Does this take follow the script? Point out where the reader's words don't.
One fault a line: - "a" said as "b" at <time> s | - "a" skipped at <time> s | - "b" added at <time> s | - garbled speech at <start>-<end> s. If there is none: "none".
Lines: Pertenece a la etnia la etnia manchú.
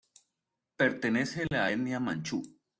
- "la etnia" skipped at 2.0 s